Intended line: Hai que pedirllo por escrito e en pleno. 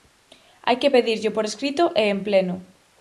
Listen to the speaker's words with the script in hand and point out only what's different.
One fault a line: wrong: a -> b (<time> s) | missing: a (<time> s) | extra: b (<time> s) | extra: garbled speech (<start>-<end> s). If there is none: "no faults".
no faults